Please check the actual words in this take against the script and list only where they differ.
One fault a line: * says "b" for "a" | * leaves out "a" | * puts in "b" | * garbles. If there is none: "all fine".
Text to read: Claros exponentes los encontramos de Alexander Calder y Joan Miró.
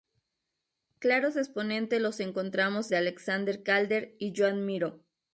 all fine